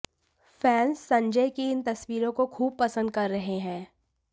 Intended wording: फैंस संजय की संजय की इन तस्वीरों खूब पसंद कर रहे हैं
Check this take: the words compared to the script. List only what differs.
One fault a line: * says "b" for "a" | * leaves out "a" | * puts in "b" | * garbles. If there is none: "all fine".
* leaves out "संजय की"
* puts in "को"